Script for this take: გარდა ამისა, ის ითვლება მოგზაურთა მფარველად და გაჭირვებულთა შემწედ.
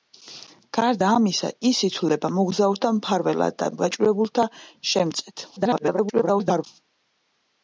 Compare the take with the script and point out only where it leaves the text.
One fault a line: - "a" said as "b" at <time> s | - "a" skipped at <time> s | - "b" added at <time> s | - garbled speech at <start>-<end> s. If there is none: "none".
- garbled speech at 5.6-6.6 s